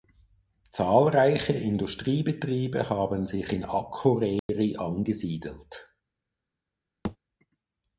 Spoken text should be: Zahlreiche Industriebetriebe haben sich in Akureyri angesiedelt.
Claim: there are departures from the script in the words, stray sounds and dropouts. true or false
true